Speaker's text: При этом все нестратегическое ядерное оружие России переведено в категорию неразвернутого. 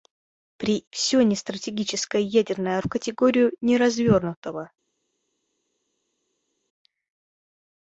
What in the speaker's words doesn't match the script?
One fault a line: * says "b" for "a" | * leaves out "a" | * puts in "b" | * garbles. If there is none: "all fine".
* leaves out "этом"
* leaves out "оружие России переведено"